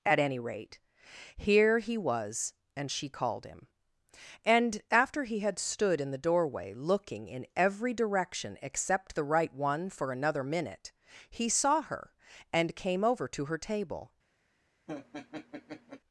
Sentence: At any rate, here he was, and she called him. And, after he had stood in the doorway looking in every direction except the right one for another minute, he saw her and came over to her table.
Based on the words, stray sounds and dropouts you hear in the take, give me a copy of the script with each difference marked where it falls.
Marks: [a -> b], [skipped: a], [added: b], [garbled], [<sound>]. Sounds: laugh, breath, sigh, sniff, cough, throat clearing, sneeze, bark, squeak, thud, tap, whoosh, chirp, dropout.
At any rate, here he was, and she called him. And, after he had stood in the doorway looking in every direction except the right one for another minute, he saw her and came over to her table. [laugh]